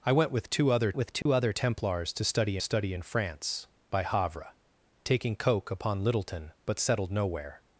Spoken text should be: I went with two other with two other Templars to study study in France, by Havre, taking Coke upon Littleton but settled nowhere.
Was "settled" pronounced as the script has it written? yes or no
yes